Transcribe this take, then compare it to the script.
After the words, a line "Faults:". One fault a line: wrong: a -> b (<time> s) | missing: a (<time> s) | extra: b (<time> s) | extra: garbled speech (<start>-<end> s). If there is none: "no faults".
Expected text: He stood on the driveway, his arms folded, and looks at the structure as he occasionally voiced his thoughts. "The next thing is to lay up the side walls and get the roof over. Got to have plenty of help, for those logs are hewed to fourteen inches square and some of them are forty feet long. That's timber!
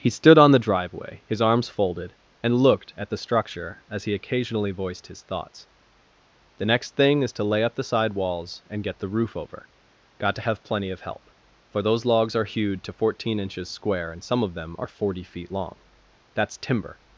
He stood on the driveway, his arms folded, and looked at the structure as he occasionally voiced his thoughts. "The next thing is to lay up the side walls and get the roof over. Got to have plenty of help, for those logs are hewed to fourteen inches square and some of them are forty feet long. That's timber!
Faults:
wrong: looks -> looked (2.6 s)